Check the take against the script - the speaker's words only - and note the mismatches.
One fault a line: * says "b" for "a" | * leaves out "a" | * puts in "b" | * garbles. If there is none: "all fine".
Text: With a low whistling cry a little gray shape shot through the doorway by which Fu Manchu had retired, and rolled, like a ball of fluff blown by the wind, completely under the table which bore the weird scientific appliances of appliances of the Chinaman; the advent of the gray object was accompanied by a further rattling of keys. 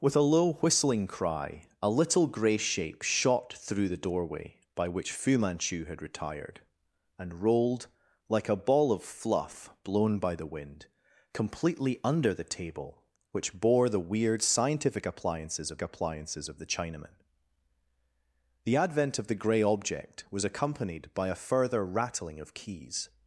all fine